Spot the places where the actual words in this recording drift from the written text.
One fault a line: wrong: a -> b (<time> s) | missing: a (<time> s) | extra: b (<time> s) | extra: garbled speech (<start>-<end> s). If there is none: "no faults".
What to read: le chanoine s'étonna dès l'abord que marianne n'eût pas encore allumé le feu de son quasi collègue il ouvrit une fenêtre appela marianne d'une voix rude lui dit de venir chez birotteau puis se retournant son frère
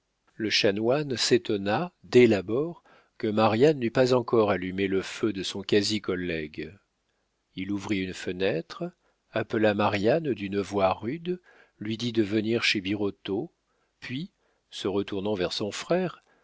extra: vers (15.3 s)